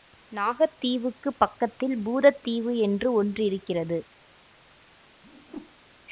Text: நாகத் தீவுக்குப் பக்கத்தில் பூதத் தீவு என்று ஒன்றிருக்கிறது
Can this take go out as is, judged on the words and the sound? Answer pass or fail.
fail